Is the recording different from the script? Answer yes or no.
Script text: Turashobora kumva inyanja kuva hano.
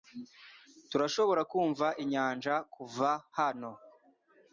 no